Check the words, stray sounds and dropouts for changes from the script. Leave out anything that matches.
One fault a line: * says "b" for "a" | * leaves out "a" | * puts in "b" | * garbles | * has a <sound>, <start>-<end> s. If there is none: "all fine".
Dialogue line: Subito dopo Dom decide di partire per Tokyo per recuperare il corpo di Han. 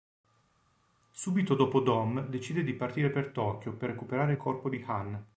all fine